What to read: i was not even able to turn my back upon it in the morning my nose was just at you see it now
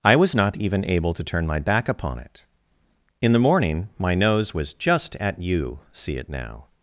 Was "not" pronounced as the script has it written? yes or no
yes